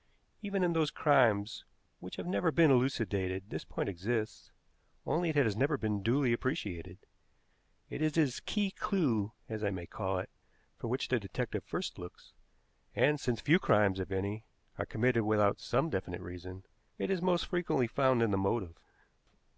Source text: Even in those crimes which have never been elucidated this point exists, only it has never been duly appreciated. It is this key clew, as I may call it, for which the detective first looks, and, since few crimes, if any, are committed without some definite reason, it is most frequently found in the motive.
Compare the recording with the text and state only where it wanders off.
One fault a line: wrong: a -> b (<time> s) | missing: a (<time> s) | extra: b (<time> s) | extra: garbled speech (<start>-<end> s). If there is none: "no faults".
no faults